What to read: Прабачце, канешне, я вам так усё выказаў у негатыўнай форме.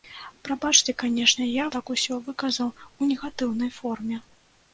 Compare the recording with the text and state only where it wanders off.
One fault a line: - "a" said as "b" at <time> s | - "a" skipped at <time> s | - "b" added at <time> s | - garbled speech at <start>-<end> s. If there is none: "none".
- "вам" skipped at 1.7 s